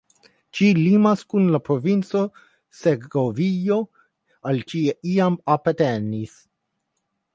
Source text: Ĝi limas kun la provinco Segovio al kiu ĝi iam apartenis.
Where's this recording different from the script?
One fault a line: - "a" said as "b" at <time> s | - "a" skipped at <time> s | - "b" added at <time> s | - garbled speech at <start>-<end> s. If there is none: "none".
- "kiu" skipped at 4.6 s